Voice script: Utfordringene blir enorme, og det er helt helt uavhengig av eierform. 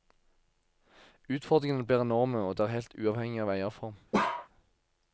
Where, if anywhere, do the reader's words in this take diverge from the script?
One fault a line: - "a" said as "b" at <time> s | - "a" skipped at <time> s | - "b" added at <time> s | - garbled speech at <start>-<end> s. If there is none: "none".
- "helt" skipped at 3.0 s